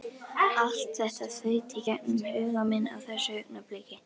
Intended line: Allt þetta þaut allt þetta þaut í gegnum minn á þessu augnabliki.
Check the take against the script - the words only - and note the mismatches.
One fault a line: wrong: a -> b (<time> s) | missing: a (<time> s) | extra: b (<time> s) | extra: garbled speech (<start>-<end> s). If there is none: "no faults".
missing: allt þetta þaut (1.8 s)
extra: huga (2.4 s)